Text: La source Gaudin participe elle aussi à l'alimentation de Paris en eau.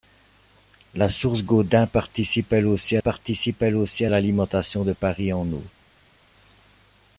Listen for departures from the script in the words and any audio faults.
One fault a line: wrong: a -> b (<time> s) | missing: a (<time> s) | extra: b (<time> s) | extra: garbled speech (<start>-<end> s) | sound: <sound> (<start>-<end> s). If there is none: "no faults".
extra: participe elle aussi (3.0 s)